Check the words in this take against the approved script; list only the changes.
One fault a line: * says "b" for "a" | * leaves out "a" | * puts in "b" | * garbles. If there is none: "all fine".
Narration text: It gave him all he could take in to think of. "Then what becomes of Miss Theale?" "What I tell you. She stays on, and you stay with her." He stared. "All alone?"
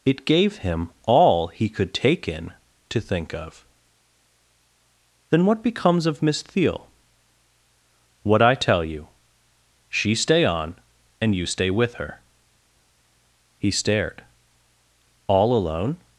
* says "stay" for "stays"